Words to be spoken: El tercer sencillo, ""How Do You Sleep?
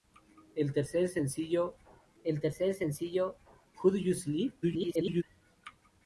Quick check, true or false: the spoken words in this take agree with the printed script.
false